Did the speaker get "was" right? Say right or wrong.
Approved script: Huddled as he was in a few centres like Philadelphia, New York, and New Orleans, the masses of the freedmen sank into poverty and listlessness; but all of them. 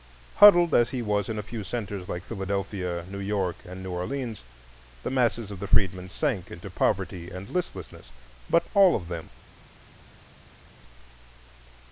right